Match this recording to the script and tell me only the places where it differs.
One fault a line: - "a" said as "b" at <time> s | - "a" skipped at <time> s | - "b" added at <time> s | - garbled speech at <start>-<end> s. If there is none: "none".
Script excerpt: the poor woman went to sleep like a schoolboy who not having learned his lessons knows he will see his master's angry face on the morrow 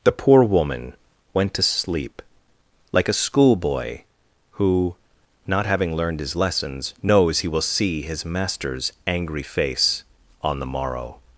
none